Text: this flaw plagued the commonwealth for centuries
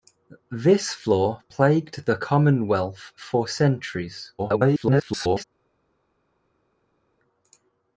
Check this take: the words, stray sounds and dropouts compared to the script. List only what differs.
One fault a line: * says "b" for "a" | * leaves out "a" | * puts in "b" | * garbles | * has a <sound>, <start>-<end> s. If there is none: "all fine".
* garbles